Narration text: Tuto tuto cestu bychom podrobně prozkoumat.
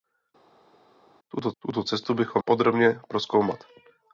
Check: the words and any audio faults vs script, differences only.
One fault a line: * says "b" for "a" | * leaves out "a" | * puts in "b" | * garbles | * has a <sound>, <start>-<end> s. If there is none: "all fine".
all fine